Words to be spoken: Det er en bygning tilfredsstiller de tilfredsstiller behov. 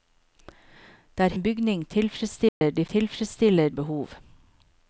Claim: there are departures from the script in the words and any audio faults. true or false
true